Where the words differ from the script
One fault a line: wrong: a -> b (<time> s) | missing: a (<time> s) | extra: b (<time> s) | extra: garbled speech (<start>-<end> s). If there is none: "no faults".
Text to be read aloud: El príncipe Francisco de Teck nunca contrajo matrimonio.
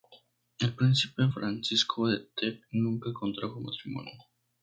no faults